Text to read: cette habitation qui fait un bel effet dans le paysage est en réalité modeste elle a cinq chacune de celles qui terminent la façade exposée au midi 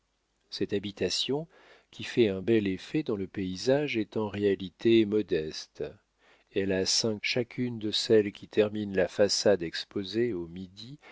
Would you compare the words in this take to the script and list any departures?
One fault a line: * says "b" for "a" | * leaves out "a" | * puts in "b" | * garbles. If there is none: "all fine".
all fine